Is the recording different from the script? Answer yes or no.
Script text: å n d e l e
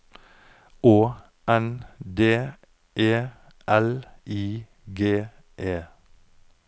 yes